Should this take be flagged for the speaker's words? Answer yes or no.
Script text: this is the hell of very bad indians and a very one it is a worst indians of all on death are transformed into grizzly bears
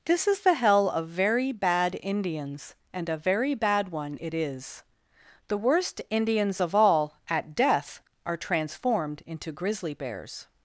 yes